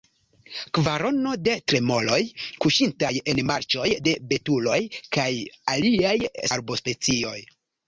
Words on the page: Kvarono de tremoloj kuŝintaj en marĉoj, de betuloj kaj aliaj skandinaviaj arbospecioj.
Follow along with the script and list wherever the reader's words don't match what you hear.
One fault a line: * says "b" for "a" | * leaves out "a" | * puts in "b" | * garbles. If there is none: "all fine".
* leaves out "skandinaviaj"